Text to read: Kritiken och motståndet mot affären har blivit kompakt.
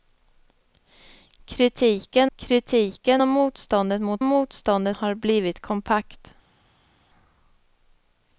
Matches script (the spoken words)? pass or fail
fail